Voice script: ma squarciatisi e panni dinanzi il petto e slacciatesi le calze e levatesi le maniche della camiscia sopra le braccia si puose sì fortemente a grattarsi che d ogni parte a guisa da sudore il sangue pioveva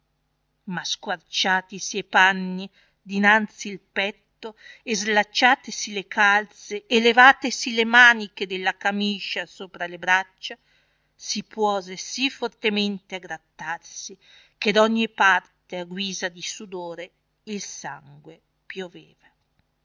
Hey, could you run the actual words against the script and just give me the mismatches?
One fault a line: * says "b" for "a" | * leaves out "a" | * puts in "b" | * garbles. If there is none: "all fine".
* says "di" for "da"